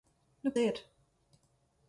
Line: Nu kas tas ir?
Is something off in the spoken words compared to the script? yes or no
yes